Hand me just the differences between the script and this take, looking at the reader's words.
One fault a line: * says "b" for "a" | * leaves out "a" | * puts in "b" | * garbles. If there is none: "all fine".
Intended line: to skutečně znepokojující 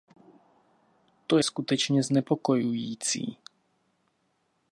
all fine